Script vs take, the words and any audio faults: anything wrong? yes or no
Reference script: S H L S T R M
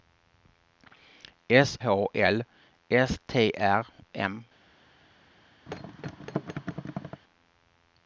yes